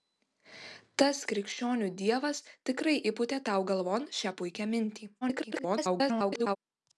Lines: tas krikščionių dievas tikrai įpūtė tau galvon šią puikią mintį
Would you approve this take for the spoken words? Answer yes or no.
no